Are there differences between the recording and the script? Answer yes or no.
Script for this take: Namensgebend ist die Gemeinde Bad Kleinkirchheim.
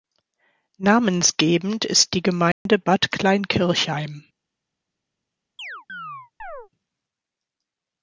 no